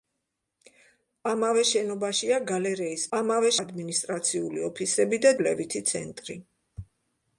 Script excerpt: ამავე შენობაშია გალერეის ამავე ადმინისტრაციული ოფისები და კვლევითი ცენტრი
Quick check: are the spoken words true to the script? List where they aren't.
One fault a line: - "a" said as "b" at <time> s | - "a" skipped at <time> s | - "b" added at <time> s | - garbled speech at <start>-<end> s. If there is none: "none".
none